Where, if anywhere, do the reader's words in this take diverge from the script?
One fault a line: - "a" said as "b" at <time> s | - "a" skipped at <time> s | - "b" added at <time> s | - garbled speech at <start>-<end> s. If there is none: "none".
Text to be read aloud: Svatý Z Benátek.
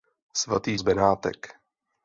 none